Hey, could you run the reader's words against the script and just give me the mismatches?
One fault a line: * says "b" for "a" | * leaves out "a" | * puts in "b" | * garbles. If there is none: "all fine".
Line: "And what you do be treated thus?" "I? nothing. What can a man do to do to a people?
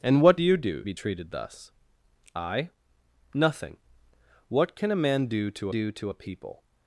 all fine